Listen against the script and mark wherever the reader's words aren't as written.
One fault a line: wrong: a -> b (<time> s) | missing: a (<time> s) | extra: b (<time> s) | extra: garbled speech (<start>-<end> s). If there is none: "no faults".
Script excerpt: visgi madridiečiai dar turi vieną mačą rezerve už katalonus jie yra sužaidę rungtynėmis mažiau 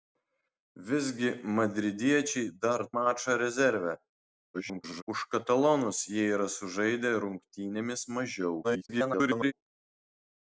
missing: turi vieną (2.8 s)
extra: garbled speech (4.5-5.0 s)
extra: garbled speech (8.6-9.5 s)